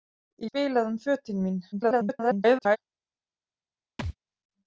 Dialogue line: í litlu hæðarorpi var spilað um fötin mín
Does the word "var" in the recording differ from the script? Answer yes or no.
yes